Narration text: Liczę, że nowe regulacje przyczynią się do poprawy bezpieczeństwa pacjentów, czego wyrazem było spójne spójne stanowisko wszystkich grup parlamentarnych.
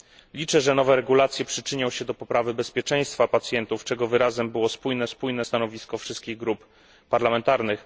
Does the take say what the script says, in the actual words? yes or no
yes